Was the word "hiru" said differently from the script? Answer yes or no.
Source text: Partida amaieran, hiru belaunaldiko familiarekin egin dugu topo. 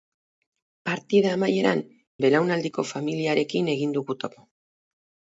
yes